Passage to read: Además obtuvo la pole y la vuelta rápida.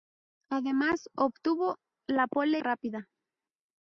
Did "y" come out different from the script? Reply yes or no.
yes